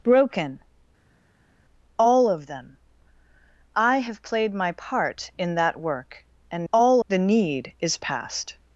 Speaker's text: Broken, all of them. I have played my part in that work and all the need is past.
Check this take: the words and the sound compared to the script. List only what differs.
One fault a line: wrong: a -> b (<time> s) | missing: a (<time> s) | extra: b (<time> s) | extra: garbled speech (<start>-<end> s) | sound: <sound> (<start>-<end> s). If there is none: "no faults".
no faults